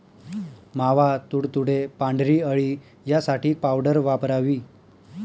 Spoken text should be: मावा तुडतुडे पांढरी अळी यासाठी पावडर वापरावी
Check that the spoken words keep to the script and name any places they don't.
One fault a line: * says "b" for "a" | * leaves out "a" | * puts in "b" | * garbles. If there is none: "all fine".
all fine